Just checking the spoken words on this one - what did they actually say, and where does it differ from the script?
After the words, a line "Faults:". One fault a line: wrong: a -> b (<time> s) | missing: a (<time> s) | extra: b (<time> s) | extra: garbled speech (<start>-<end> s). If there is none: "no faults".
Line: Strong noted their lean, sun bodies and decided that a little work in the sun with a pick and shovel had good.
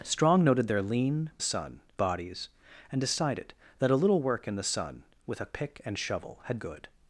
Strong noted their lean, sun bodies and decided that a little work in the sun with a pick and shovel had good.
Faults:
no faults